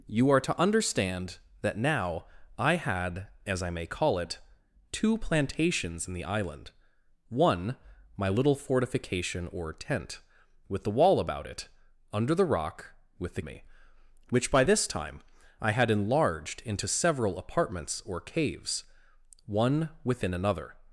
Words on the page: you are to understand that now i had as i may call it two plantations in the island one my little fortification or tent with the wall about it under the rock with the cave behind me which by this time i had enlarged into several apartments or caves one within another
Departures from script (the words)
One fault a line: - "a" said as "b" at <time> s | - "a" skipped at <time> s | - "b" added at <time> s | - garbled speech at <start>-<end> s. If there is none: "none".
- "cave behind" skipped at 13.4 s